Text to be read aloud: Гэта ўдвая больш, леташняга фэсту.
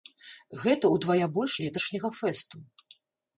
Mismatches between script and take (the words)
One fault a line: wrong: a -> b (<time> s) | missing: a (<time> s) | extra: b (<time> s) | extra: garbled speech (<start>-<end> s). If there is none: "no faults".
no faults